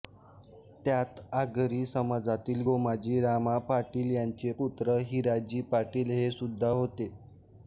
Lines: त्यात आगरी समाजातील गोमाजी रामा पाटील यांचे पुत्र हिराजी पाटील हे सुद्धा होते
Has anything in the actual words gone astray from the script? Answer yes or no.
no